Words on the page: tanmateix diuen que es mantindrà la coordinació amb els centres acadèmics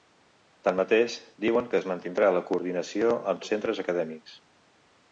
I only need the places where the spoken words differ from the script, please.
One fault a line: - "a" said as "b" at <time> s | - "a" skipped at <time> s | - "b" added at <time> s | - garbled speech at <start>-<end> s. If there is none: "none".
none